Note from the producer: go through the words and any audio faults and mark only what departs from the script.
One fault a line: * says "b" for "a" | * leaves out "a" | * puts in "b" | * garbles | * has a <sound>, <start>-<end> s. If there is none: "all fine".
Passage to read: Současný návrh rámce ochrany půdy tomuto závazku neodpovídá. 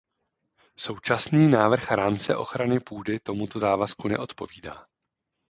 all fine